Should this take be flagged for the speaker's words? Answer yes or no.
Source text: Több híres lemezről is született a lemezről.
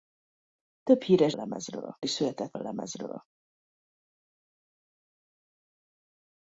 no